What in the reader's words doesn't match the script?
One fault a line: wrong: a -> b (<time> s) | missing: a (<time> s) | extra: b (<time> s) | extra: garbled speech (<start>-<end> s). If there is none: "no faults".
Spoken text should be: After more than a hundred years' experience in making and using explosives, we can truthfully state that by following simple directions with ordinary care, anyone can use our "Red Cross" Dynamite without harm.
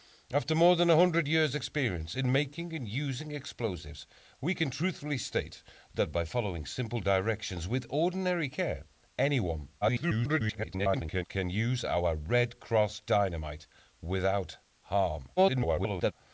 extra: garbled speech (9.8-11.2 s)
extra: garbled speech (15.4-16.1 s)